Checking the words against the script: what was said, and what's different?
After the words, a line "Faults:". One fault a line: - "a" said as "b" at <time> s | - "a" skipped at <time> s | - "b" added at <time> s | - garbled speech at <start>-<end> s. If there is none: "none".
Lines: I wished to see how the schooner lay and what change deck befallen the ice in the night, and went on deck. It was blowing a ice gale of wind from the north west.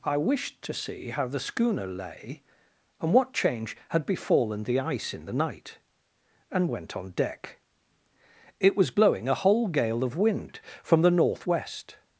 I wished to see how the schooner lay and what change had befallen the ice in the night, and went on deck. It was blowing a whole gale of wind from the north west.
Faults:
- "deck" said as "had" at 3.9 s
- "ice" said as "whole" at 9.3 s